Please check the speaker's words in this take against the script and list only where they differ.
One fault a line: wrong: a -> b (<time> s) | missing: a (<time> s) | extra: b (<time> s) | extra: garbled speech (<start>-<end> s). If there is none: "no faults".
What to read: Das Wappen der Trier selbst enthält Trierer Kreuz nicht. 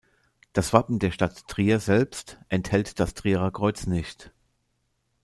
extra: Stadt (1.1 s)
extra: das (3.0 s)